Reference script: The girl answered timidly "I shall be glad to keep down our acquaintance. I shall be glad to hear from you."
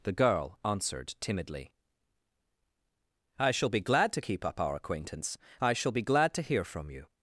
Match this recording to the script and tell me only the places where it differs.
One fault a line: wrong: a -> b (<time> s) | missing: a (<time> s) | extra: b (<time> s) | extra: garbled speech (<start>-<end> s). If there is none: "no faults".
wrong: down -> up (4.4 s)